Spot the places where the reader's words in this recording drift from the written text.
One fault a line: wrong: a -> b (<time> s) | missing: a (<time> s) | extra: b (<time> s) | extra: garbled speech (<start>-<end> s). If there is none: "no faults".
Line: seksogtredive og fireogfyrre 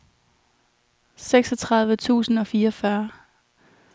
extra: tusind (1.9 s)